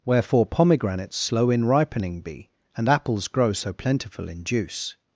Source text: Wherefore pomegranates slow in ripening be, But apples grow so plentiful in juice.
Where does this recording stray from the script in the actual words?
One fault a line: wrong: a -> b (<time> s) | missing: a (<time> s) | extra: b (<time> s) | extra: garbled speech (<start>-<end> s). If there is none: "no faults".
wrong: But -> And (2.8 s)